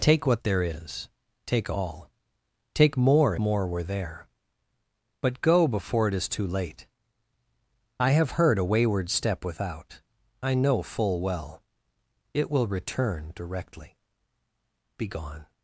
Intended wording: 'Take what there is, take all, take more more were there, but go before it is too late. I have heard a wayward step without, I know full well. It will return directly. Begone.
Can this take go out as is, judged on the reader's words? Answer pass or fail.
pass